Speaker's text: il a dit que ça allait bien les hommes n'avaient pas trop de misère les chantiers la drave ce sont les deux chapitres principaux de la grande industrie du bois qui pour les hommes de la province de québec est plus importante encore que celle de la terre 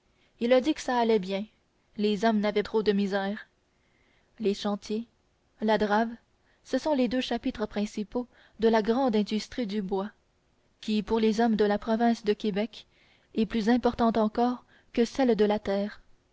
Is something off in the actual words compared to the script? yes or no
yes